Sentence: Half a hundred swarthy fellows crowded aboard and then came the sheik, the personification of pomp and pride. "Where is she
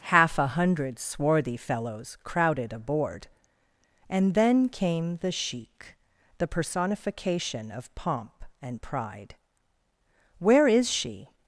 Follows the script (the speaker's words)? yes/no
yes